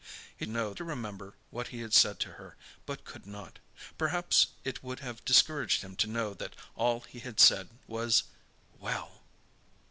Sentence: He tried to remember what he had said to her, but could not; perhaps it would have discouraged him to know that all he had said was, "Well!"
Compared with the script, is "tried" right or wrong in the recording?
wrong